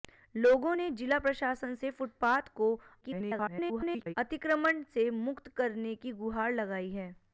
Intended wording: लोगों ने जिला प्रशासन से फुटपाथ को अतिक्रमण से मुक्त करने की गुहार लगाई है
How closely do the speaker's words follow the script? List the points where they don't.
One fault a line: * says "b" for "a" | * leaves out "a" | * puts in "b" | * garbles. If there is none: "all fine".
* garbles